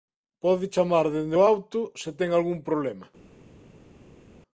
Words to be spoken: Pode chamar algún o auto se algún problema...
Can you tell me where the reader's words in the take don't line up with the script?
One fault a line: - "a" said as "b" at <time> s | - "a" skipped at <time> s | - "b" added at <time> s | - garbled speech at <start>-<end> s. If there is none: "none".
- "algún" said as "dende" at 1.1 s
- "ten" added at 2.2 s